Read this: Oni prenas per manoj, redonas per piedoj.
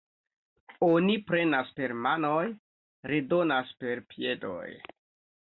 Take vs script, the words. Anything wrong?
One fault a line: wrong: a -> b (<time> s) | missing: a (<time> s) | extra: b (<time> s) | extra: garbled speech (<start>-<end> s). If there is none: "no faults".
no faults